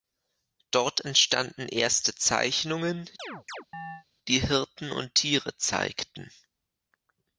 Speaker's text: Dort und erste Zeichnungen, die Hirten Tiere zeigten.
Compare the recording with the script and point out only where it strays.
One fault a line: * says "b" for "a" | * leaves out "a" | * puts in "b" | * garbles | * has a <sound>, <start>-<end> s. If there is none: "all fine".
* says "entstanden" for "und"
* has a chirp, 3.2-4.0 s
* puts in "und"